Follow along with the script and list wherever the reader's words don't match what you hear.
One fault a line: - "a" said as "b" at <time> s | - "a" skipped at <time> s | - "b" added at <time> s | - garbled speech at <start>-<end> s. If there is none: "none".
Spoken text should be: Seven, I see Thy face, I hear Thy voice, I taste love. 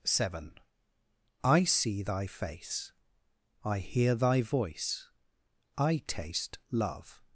none